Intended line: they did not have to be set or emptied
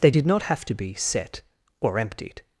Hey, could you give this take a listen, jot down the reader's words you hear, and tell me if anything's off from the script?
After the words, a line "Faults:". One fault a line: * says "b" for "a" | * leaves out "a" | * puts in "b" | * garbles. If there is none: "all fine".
they did not have to be set or emptied
Faults:
all fine